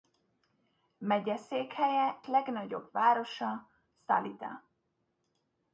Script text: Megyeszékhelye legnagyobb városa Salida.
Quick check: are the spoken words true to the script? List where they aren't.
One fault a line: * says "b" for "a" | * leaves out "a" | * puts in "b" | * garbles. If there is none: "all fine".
all fine